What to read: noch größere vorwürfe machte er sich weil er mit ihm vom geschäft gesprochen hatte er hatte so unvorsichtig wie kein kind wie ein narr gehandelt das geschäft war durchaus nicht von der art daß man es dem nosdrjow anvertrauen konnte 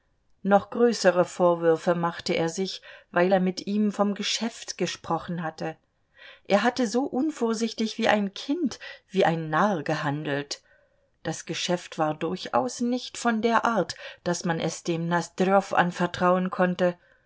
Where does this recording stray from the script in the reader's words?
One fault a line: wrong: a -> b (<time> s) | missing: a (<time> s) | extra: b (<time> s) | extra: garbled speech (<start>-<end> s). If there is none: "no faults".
wrong: kein -> ein (8.1 s)